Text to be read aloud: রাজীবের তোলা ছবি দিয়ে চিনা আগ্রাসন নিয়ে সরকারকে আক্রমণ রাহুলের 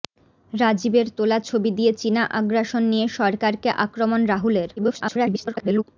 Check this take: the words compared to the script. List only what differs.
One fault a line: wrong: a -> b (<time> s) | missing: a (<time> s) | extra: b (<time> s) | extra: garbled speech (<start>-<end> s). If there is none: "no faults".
extra: garbled speech (4.8-5.8 s)